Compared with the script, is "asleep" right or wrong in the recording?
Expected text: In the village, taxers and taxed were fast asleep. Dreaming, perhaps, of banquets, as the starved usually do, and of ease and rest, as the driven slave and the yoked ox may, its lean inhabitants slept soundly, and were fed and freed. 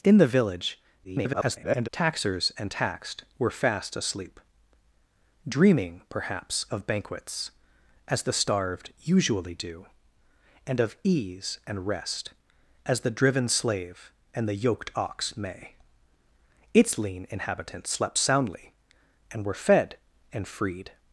right